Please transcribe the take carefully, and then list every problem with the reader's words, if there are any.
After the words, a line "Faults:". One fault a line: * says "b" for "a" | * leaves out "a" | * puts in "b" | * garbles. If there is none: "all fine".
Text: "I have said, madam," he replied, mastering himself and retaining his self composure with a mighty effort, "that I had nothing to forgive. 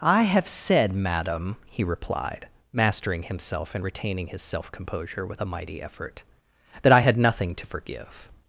"I have said, madam," he replied, mastering himself and retaining his self composure with a mighty effort, "that I had nothing to forgive.
Faults:
all fine